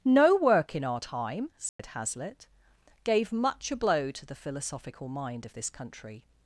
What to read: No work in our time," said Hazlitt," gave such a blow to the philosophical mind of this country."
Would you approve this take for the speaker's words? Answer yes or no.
no